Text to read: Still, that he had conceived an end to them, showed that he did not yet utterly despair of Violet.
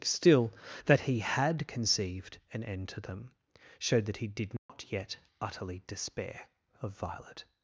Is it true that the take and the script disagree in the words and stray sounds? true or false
true